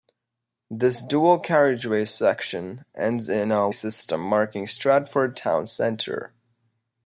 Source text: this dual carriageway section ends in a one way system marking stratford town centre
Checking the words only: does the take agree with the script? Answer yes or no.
no